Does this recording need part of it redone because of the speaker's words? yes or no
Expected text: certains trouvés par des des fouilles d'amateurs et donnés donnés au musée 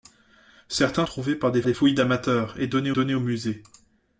no